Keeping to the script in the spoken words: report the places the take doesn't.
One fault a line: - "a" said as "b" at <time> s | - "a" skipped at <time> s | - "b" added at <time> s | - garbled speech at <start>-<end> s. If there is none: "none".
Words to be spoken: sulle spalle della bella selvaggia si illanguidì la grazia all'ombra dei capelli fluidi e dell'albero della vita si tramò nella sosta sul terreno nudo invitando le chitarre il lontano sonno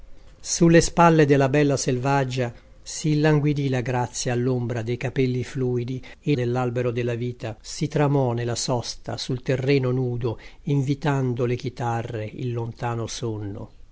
none